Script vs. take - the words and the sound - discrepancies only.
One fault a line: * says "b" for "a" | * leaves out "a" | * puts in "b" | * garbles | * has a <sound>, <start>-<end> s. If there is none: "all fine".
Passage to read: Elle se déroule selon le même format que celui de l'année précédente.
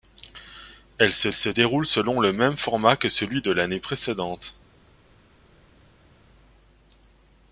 * puts in "se"